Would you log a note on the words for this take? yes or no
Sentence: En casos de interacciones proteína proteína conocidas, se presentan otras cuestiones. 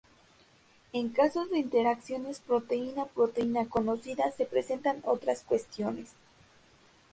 no